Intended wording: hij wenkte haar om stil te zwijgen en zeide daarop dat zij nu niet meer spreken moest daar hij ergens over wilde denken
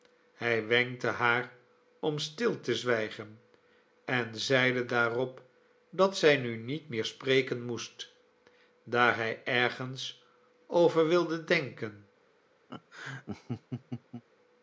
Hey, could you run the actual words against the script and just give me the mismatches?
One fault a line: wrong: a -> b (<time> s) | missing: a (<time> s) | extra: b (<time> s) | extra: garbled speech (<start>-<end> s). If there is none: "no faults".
no faults